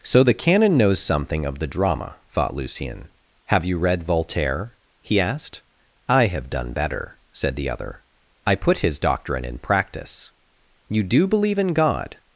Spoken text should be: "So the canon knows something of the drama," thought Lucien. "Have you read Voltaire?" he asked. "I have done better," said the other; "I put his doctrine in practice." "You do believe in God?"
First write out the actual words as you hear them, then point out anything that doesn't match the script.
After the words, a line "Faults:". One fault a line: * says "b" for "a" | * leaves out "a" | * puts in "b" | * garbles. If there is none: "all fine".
"So the canon knows something of the drama," thought Lucien. "Have you read Voltaire?" he asked. "I have done better," said the other; "I put his doctrine in practice." "You do believe in God?"
Faults:
all fine